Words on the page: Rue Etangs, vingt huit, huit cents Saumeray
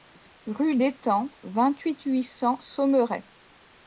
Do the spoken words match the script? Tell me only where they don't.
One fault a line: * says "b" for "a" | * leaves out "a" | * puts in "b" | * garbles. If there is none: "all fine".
all fine